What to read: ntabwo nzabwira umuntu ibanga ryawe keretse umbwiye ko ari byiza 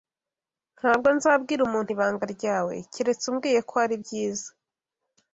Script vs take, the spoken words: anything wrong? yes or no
no